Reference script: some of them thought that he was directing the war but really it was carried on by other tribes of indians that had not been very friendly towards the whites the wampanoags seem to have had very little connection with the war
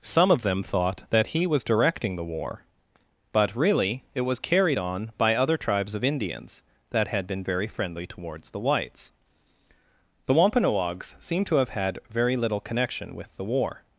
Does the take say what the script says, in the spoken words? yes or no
no